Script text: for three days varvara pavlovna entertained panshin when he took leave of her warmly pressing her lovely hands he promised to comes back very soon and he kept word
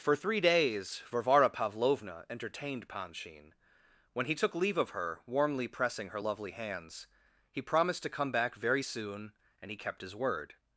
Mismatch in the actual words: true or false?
true